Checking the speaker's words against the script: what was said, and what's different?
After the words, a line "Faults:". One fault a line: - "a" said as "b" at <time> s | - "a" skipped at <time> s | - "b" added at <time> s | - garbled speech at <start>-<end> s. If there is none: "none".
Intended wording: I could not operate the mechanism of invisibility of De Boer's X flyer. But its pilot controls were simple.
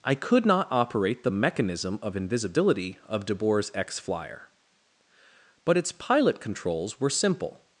I could not operate the mechanism of invisibility of De Boer's X flyer. But its pilot controls were simple.
Faults:
none